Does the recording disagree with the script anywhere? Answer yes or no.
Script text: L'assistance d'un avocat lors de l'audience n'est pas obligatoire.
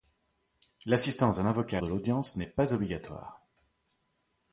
yes